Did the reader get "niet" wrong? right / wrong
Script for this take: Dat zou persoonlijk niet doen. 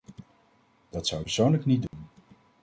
right